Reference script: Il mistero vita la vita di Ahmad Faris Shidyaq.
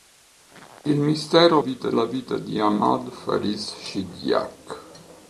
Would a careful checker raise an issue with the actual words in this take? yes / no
no